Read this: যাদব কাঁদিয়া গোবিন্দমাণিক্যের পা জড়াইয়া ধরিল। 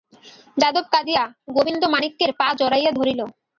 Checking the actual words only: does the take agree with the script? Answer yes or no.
yes